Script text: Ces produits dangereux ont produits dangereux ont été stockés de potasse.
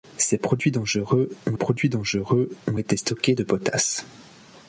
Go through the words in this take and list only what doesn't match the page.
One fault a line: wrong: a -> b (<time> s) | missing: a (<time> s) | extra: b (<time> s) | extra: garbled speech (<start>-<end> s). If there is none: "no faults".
no faults